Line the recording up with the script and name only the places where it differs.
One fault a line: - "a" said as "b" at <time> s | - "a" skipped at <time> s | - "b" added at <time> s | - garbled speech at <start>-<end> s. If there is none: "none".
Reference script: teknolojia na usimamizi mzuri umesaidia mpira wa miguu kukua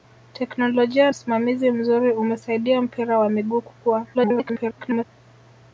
- "na" skipped at 1.1 s
- garbled speech at 4.1-5.0 s